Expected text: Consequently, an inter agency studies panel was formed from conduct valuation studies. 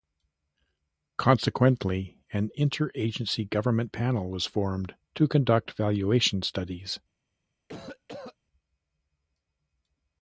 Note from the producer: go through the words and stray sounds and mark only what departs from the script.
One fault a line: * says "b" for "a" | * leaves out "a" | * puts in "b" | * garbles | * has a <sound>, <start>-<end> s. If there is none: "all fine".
* says "government" for "studies"
* says "to" for "from"
* has a cough, 7.7-8.4 s